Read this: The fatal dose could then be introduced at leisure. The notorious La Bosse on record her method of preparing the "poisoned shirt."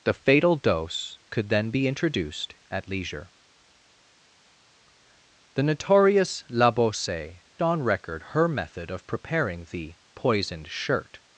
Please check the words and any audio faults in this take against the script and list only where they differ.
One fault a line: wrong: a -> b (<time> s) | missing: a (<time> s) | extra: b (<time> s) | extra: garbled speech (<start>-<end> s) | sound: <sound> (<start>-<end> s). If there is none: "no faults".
no faults